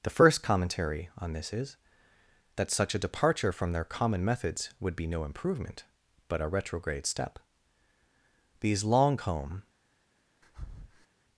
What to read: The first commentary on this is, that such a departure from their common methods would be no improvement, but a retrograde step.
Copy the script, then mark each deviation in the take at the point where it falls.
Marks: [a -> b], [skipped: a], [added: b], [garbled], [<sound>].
The first commentary on this is, that such a departure from their common methods would be no improvement, but a retrograde step. [added: These long comb] [breath]